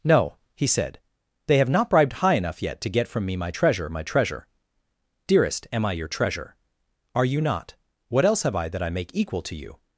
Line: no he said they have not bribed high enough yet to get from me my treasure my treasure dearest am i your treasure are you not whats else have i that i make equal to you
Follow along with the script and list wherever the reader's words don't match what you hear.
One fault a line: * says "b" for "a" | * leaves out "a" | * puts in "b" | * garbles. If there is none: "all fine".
* says "what" for "whats"